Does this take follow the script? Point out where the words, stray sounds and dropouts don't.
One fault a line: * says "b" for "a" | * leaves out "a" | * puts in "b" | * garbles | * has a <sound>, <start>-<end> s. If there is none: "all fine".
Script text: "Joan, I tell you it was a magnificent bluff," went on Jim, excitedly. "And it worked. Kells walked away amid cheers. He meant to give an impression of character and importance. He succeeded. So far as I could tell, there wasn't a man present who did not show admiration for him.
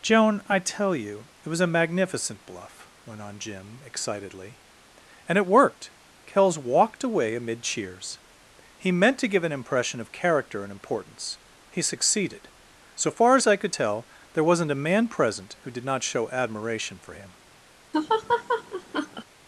* has a laugh, 17.9-19.2 s